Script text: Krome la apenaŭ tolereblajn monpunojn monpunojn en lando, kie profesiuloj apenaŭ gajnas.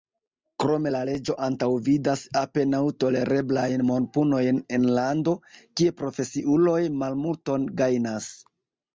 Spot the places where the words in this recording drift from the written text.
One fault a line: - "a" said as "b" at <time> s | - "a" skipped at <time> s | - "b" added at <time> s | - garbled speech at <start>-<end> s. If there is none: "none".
- "leĝo antaŭvidas" added at 1.1 s
- "monpunojn" skipped at 4.6 s
- "apenaŭ" said as "malmulton" at 7.1 s